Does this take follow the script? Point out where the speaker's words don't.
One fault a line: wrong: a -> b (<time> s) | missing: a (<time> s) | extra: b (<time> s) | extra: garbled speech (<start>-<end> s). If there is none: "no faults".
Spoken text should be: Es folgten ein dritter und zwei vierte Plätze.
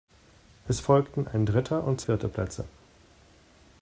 missing: zwei (2.0 s)